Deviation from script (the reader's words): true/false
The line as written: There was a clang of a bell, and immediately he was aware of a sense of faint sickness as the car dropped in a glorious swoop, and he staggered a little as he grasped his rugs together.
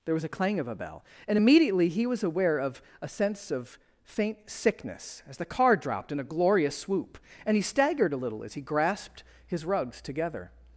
false